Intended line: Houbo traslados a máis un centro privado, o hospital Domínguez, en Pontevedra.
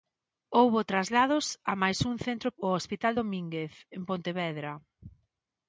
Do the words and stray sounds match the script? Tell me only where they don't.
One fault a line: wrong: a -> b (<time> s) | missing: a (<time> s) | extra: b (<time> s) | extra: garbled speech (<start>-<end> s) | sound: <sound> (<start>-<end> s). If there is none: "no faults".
missing: privado (2.5 s)